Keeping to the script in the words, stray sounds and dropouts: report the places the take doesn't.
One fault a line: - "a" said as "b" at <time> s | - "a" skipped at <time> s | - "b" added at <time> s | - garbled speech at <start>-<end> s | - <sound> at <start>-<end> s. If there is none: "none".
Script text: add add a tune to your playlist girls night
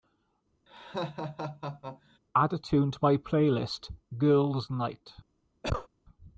- laugh at 0.7-2.2 s
- "add" skipped at 2.5 s
- "your" said as "my" at 3.0 s
- cough at 5.6-5.9 s